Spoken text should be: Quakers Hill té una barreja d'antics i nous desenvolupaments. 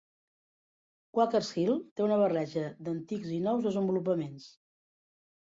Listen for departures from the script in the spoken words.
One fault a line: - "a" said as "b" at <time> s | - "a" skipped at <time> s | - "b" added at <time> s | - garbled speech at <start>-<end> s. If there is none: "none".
none